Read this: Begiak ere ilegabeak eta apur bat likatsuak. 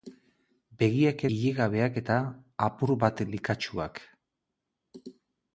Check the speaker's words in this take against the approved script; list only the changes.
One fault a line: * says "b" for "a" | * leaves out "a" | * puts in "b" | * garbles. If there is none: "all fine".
* leaves out "ere"